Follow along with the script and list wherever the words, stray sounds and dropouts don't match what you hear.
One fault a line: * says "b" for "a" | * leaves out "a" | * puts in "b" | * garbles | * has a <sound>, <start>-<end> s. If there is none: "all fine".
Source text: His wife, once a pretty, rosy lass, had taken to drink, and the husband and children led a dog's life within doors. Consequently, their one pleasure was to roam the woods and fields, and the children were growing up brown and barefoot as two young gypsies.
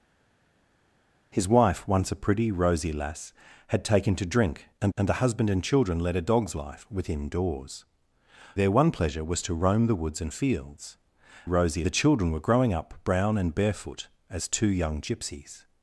* puts in "and"
* leaves out "Consequently"
* says "rosy" for "and"